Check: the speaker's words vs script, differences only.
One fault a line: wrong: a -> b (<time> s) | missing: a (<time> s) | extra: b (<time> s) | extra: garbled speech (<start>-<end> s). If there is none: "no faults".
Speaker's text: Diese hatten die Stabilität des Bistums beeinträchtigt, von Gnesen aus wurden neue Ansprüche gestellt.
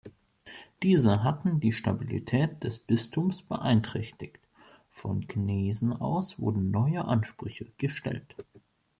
no faults